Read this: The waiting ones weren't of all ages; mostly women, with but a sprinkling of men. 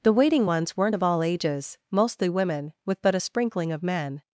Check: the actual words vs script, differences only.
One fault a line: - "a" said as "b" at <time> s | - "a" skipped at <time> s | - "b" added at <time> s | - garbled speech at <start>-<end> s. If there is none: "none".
none